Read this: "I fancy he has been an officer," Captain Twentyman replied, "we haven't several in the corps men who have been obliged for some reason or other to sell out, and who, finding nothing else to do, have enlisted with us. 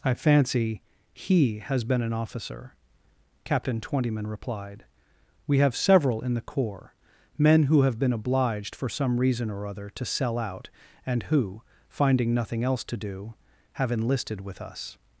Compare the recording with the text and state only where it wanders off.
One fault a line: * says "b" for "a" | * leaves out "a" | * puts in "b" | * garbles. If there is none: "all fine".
* says "have" for "haven't"